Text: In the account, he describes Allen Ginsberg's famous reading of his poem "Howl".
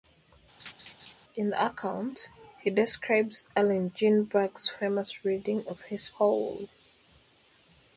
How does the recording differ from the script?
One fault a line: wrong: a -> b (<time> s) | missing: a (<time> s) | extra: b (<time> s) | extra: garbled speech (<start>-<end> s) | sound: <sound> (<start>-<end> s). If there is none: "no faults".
sound: laugh (0.6-1.1 s)
missing: poem (6.1 s)